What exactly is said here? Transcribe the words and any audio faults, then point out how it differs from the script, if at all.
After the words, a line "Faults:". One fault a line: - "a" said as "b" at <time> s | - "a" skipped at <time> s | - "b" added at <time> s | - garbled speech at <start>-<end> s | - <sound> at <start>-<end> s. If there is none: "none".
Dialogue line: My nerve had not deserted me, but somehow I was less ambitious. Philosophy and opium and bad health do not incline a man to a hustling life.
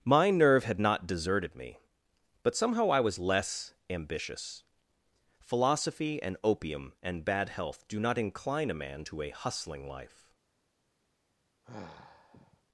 My nerve had not deserted me, but somehow I was less ambitious. Philosophy and opium and bad health do not incline a man to a hustling life.
Faults:
- sigh at 11.6-12.6 s